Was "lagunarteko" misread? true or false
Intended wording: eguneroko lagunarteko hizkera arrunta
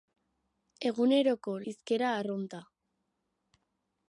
true